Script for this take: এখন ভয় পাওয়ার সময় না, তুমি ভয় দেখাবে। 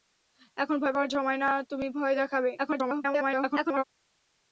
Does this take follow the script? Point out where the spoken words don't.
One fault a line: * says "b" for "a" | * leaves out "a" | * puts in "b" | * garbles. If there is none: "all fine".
* garbles